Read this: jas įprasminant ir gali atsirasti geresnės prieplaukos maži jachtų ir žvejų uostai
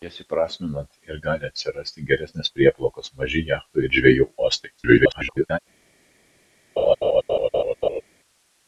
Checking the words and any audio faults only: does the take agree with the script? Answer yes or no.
no